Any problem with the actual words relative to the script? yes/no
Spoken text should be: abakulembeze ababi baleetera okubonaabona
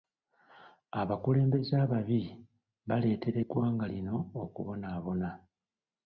yes